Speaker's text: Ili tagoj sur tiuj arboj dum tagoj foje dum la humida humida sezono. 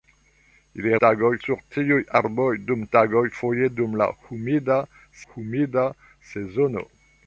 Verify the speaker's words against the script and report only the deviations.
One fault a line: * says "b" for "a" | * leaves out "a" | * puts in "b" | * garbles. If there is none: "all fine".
all fine